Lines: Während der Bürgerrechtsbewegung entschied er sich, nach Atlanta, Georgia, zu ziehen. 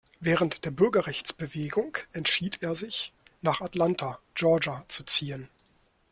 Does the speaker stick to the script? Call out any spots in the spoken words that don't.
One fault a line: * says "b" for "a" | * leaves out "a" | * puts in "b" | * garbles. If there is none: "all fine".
all fine